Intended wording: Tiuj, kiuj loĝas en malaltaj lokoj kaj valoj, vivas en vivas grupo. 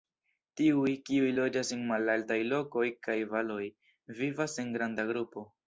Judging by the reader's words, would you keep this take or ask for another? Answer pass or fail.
fail